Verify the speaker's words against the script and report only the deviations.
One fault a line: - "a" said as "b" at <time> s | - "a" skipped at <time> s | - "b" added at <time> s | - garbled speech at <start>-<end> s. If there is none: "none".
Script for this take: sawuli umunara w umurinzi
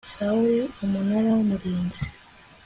none